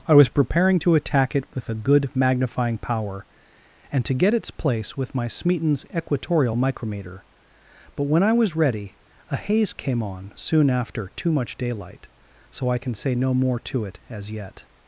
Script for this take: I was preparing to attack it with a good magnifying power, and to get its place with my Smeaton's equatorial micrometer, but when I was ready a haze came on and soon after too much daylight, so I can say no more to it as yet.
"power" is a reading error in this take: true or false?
false